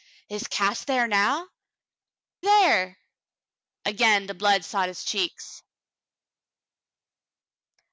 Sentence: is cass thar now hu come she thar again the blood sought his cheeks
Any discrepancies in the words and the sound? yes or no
yes